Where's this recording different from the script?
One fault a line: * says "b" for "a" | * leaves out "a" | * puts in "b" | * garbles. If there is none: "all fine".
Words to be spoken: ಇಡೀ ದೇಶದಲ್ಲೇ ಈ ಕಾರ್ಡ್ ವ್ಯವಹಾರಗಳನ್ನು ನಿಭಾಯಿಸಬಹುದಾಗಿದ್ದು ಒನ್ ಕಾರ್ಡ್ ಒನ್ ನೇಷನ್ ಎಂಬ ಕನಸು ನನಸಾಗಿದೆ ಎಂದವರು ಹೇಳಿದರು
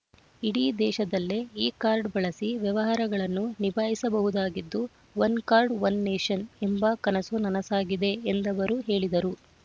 * puts in "ಬಳಸಿ"